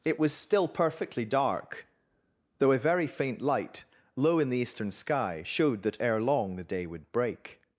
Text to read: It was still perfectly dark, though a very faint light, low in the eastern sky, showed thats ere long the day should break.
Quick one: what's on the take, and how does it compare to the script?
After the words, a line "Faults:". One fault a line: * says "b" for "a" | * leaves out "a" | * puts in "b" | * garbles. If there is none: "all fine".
It was still perfectly dark, though a very faint light, low in the eastern sky, showed that ere long the day would break.
Faults:
* says "that" for "thats"
* says "would" for "should"